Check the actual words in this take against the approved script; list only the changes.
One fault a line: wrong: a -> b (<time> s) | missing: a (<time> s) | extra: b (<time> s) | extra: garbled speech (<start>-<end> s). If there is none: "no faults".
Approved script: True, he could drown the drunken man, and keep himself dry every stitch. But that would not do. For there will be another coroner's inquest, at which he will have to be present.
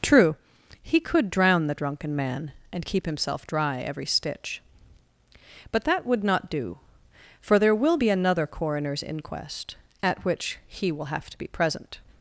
no faults